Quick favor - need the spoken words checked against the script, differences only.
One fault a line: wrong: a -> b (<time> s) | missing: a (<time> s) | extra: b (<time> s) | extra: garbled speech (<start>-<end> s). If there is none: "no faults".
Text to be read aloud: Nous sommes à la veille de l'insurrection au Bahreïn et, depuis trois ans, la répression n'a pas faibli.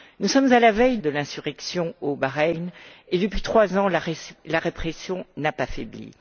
no faults